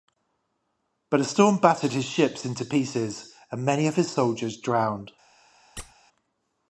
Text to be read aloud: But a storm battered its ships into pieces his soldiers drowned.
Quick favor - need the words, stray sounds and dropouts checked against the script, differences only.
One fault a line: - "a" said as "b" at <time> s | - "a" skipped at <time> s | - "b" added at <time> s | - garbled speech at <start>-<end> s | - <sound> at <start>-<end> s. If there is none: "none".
- "its" said as "his" at 1.9 s
- "and many of" added at 3.5 s
- squeak at 5.8-5.9 s